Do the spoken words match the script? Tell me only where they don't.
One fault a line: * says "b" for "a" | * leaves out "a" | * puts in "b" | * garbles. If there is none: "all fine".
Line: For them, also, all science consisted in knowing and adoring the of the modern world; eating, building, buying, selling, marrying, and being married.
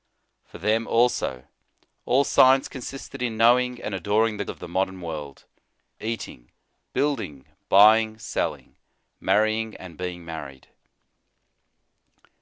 all fine